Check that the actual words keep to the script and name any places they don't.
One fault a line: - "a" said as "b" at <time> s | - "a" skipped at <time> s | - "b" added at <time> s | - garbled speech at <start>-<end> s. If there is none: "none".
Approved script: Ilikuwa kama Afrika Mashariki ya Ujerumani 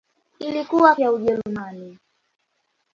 - "kama Afrika Mashariki" skipped at 0.9 s